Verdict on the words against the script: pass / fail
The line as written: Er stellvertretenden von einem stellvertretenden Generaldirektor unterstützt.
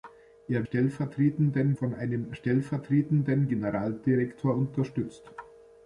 pass